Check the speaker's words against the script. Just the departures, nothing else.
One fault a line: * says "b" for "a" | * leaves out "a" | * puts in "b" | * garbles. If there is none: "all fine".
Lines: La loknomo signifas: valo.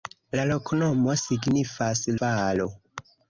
all fine